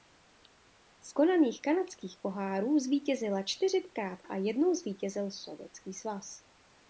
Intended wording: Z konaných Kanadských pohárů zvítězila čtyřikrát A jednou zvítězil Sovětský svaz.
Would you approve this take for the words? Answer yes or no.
yes